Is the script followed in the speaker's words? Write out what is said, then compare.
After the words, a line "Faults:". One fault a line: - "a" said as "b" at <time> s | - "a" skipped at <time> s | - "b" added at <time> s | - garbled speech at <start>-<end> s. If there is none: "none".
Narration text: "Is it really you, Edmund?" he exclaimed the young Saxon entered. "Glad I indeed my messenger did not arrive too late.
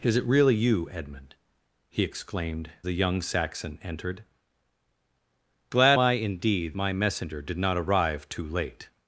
"Is it really you, Edmund?" he exclaimed the young Saxon entered. "Glad I indeed my messenger did not arrive too late.
Faults:
none